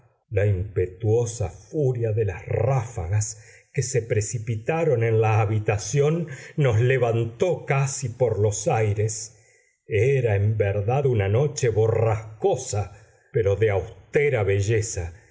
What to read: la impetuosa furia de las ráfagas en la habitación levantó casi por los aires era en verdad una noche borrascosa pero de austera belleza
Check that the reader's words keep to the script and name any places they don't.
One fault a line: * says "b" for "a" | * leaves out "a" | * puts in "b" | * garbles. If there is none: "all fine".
* puts in "que se precipitaron"
* puts in "nos"